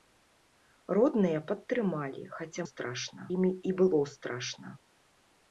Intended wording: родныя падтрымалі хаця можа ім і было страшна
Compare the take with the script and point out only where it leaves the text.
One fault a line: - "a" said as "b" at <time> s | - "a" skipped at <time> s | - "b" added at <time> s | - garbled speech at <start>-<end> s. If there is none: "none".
- "можа" said as "страшна" at 2.7 s